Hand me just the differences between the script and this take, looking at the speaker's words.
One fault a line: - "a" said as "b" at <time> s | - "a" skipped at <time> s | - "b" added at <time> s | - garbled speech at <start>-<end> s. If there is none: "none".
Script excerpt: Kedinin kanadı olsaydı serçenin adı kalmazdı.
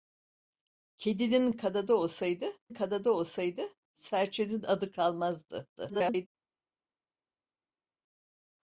- "kanadı olsaydı" added at 2.7 s
- garbled speech at 5.8-6.3 s